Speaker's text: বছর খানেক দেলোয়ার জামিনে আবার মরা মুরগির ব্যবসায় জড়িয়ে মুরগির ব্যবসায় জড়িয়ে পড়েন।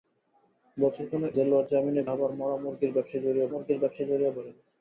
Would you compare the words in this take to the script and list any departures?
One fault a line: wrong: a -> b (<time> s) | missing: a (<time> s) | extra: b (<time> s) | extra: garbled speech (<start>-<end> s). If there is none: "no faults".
no faults